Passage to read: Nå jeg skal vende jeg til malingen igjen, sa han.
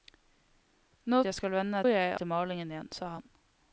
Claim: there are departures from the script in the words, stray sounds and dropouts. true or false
false